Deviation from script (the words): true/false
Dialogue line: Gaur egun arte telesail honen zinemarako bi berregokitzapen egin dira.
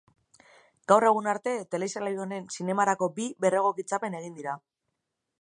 false